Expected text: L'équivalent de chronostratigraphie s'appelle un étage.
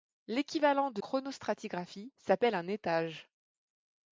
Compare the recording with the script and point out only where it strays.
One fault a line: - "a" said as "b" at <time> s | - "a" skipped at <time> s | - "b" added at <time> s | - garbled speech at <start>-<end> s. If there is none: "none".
none